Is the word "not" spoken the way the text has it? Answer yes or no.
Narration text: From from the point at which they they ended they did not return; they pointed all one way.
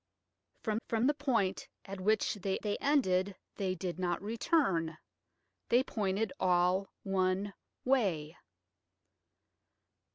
yes